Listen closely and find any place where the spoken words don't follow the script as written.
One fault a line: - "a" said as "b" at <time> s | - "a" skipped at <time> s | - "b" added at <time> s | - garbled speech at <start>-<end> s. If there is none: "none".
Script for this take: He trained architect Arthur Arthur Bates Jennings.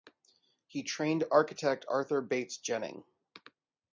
- "Arthur" skipped at 2.2 s